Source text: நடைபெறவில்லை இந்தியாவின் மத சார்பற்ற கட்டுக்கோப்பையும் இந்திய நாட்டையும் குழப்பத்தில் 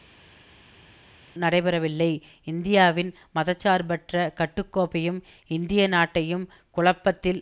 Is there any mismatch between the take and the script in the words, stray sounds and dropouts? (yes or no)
no